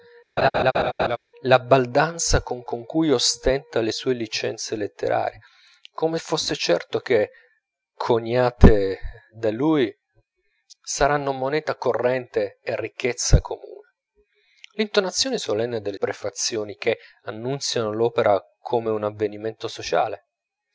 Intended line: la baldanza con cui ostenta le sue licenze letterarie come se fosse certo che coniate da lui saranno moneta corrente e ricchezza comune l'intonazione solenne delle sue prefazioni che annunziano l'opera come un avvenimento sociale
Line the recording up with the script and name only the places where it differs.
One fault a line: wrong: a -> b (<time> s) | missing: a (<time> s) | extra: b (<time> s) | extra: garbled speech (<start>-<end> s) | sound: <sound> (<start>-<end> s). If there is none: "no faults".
sound: laugh (0.4-1.2 s)
extra: con (2.6 s)
missing: se (6.2 s)
missing: sue (16.0 s)